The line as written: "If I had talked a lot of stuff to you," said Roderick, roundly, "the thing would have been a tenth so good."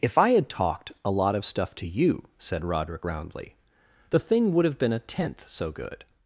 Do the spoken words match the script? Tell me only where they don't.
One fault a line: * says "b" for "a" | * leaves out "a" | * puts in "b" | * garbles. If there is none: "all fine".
all fine